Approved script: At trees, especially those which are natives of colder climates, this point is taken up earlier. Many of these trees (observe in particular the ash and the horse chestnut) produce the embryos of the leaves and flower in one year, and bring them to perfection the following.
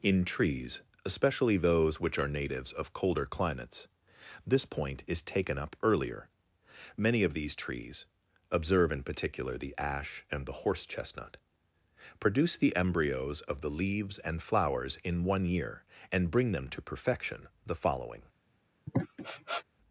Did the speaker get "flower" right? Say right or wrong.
wrong